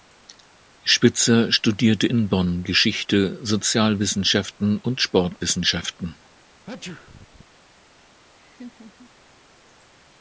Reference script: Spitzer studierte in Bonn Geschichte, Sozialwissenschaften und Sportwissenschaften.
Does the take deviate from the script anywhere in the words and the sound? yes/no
yes